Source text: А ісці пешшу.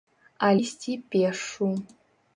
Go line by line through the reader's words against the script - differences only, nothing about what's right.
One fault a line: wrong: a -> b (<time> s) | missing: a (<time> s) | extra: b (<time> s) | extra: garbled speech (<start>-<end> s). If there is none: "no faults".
no faults